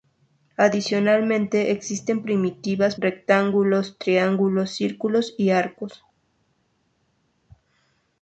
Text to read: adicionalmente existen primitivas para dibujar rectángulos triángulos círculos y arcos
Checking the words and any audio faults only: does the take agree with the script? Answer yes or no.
no